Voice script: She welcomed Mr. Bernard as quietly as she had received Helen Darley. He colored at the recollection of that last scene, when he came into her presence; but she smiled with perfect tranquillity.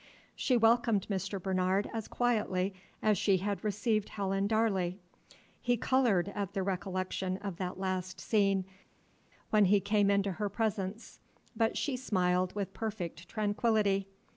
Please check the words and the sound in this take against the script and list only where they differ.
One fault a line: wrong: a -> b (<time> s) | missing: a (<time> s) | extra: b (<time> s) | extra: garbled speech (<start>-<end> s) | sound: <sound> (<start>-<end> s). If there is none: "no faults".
no faults